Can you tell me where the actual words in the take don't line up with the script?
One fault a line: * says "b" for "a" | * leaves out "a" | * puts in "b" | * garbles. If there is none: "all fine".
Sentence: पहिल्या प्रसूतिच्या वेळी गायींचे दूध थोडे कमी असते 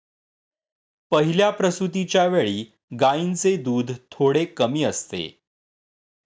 all fine